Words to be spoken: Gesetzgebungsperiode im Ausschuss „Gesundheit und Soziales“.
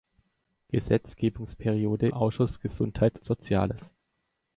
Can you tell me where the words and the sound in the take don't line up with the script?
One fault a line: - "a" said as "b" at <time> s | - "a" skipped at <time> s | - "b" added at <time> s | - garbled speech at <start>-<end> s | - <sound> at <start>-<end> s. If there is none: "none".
- "im" skipped at 2.1 s
- "und" skipped at 3.2 s